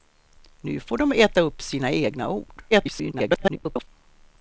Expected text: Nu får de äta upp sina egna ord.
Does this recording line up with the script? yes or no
no